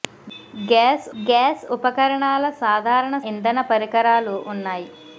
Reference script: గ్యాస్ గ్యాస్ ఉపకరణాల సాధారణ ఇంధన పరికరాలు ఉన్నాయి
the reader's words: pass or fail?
pass